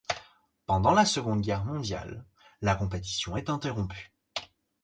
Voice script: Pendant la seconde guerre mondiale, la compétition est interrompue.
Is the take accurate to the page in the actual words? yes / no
yes